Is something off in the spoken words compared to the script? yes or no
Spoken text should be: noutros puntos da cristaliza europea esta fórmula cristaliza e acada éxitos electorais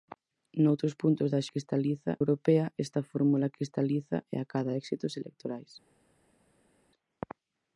no